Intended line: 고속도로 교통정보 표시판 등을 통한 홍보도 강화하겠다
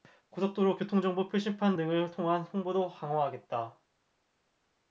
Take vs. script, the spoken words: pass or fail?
pass